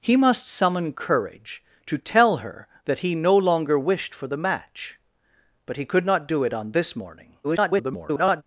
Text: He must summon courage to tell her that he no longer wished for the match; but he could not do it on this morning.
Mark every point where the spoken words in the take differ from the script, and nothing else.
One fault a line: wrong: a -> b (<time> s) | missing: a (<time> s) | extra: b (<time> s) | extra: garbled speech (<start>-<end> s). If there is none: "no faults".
extra: garbled speech (7.4-8.4 s)